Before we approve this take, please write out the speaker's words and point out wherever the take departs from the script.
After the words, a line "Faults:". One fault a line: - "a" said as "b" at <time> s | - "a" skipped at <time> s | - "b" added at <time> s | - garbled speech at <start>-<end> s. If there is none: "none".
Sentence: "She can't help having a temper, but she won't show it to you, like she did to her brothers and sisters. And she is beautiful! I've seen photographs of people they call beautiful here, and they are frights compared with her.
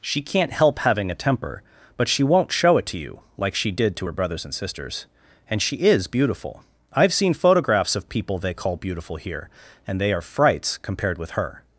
"She can't help having a temper, but she won't show it to you, like she did to her brothers and sisters. And she is beautiful! I've seen photographs of people they call beautiful here, and they are frights compared with her.
Faults:
none